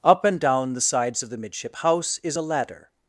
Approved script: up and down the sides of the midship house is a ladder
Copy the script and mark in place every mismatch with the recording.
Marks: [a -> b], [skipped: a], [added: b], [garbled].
up and down the sides of the midship house is a ladder